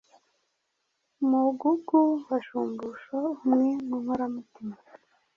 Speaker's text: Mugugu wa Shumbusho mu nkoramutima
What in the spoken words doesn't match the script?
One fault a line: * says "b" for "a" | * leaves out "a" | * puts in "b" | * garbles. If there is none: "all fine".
* puts in "umwe"